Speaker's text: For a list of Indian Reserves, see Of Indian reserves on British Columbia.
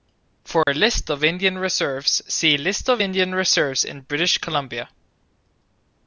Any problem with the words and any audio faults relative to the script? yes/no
yes